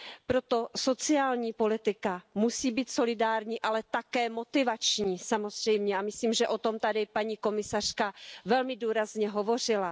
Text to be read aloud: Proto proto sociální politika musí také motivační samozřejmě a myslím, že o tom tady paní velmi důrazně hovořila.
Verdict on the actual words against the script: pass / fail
fail